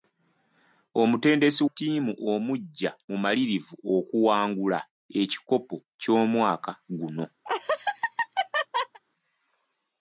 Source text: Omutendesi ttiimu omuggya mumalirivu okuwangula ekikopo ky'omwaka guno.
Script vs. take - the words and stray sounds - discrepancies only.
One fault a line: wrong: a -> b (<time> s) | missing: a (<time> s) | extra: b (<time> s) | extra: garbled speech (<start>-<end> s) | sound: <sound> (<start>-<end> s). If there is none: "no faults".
sound: laugh (7.4-9.0 s)